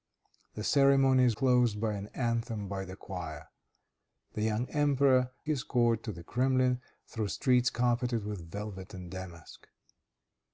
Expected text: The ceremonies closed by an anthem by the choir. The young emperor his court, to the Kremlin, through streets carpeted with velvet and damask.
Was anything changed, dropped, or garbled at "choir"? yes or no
no